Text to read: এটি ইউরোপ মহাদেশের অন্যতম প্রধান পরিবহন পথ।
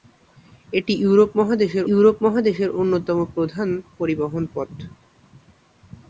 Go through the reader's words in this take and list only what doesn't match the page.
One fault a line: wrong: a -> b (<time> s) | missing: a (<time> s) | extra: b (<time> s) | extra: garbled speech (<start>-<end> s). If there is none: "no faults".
extra: ইউরোপ মহাদেশের (1.9 s)